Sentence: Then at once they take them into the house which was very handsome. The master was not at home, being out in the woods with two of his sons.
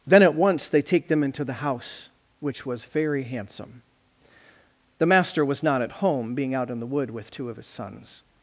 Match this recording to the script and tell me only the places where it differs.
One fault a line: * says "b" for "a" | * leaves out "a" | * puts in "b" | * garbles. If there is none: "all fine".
* says "wood" for "woods"